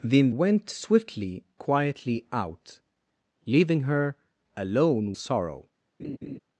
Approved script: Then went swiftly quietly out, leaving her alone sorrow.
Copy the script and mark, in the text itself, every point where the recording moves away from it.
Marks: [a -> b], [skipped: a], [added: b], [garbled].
Then went swiftly quietly out, leaving her alone sorrow.